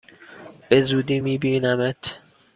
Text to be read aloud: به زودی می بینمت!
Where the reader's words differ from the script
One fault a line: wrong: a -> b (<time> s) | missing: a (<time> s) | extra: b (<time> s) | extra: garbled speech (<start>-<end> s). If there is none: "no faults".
no faults